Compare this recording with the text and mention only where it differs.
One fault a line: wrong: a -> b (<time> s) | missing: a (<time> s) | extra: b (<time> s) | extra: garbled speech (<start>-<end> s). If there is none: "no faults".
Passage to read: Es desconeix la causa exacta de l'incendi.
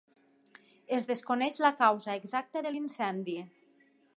no faults